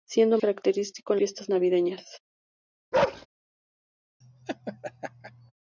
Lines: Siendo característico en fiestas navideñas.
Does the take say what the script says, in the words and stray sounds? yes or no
no